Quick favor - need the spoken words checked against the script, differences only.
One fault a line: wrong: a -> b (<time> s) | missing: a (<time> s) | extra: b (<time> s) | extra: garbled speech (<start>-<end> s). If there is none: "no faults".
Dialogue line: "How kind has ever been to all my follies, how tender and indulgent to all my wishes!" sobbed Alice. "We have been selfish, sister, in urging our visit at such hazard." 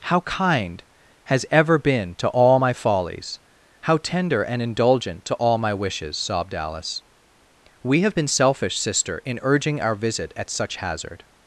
no faults